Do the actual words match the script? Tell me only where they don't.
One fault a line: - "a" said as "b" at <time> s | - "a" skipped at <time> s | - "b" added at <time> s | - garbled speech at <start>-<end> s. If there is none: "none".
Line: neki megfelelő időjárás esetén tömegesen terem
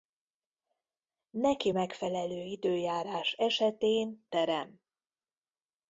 - "tömegesen" skipped at 4.3 s